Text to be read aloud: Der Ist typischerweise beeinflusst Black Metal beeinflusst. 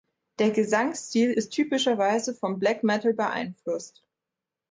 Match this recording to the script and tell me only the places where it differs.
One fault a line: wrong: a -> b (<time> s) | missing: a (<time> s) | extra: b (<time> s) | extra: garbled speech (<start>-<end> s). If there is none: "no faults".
extra: Gesangsstil (0.5 s)
wrong: beeinflusst -> vom (2.3 s)